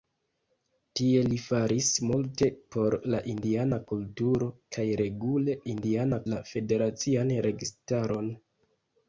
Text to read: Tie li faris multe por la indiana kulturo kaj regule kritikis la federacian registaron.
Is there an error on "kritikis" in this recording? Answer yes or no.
yes